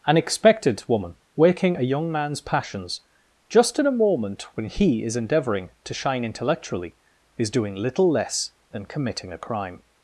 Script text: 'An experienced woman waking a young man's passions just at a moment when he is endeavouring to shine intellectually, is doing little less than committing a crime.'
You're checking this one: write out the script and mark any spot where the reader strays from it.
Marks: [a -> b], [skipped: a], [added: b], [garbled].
'An [experienced -> expected] woman waking a young man's passions just [at -> in] a moment when he is endeavouring to shine intellectually, is doing little less than committing a crime.'